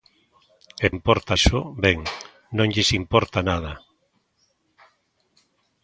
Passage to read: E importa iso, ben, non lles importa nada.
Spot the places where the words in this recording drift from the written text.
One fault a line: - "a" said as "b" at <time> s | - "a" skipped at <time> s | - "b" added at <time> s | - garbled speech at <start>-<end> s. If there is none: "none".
none